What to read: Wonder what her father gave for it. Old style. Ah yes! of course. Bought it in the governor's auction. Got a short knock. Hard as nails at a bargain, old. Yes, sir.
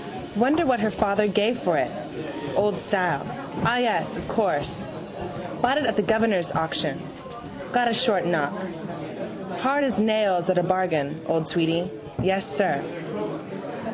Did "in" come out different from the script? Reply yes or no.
yes